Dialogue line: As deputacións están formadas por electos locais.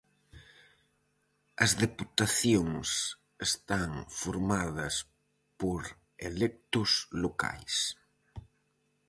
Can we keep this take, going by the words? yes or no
yes